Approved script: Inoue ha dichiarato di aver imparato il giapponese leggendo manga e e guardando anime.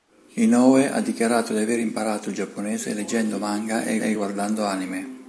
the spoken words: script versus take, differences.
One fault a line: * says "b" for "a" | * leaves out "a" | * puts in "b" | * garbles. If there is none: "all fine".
all fine